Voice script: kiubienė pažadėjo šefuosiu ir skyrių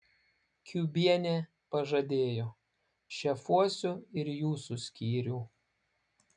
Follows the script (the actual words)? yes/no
no